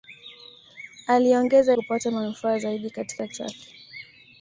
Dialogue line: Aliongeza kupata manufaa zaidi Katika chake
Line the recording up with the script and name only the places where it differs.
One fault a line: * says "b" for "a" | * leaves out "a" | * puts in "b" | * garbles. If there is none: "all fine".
all fine